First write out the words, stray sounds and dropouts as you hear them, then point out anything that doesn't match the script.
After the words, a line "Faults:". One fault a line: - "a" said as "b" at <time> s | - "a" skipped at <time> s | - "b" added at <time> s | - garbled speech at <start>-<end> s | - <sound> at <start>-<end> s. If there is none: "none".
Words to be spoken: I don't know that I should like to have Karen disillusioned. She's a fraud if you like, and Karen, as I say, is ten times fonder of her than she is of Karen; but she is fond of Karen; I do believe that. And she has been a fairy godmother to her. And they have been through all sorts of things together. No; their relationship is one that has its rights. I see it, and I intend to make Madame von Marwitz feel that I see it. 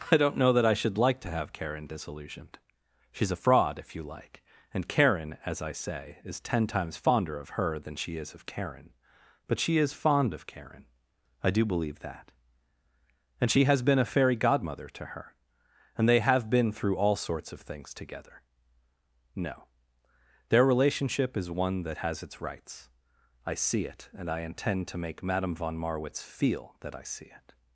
I don't know that I should like to have Karen disillusioned. She's a fraud if you like, and Karen, as I say, is ten times fonder of her than she is of Karen; but she is fond of Karen; I do believe that. And she has been a fairy godmother to her. And they have been through all sorts of things together. No; their relationship is one that has its rights. I see it, and I intend to make Madame von Marwitz feel that I see it.
Faults:
none